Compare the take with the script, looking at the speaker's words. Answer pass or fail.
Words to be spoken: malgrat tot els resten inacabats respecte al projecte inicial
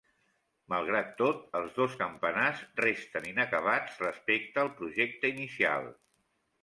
fail